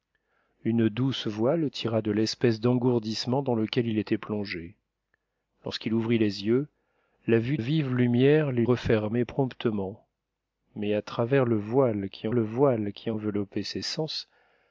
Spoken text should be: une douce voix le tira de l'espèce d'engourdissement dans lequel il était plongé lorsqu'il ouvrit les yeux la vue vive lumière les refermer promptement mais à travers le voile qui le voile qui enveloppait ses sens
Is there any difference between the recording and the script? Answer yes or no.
no